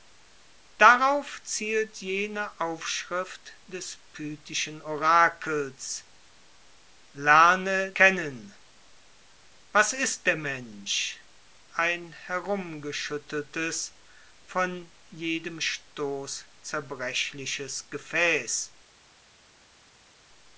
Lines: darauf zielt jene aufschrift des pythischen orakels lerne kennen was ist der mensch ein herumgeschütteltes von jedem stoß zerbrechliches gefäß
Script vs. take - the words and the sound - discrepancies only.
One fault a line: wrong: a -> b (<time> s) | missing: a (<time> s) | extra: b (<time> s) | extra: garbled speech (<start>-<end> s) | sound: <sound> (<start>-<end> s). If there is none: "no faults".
no faults